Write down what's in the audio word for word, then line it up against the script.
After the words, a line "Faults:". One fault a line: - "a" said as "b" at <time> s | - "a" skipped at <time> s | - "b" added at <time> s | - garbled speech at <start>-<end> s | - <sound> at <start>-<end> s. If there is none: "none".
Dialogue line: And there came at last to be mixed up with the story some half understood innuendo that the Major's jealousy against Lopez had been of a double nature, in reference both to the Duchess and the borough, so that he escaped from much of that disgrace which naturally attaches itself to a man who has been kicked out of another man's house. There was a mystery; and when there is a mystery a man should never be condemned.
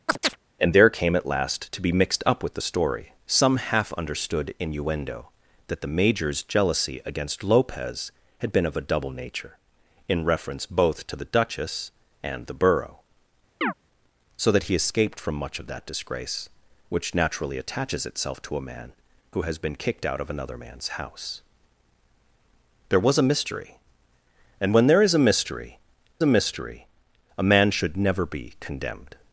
And there came at last to be mixed up with the story some half understood innuendo that the Major's jealousy against Lopez had been of a double nature, in reference both to the Duchess and the borough, so that he escaped from much of that disgrace which naturally attaches itself to a man who has been kicked out of another man's house. There was a mystery; and when there is a mystery a mystery a man should never be condemned.
Faults:
- chirp at 0.1-0.4 s
- chirp at 13.6-13.7 s
- "mystery a" added at 26.3 s